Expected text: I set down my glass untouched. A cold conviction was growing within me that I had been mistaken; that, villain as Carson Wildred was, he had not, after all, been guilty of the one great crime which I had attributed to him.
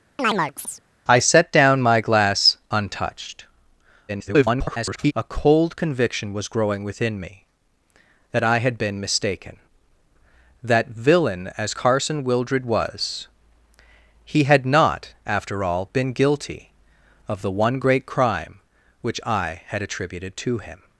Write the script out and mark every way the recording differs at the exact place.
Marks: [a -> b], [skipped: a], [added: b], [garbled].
I set down my glass untouched. [garbled] A cold conviction was growing within me that I had been mistaken; that, villain as Carson Wildred was, he had not, after all, been guilty of the one great crime which I had attributed to him.